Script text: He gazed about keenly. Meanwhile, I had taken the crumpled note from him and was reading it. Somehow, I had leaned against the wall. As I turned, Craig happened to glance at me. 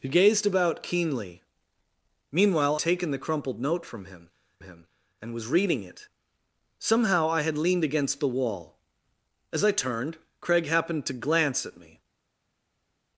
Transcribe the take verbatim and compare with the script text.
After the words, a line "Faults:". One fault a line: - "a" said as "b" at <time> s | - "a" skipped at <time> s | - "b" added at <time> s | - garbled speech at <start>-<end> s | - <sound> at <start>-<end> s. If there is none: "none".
He gazed about keenly. Meanwhile, taken the crumpled note from him him and was reading it. Somehow, I had leaned against the wall. As I turned, Craig happened to glance at me.
Faults:
- "I had" skipped at 2.8 s
- "him" added at 4.6 s